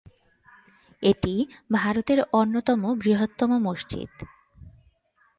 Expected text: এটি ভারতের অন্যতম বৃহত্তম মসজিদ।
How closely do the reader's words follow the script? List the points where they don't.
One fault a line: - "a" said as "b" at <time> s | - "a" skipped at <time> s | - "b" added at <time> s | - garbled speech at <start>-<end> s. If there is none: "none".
none